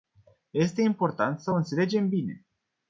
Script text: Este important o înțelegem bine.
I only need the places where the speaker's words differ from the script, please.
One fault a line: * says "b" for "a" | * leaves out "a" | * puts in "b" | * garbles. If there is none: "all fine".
* puts in "să"